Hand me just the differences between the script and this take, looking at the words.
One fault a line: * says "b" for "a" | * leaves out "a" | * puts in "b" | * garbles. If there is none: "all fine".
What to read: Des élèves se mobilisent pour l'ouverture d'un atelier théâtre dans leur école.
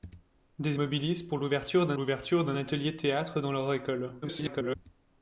* says "mobilisent pour l'ouverture d'un" for "élèves se mobilisent pour"
* garbles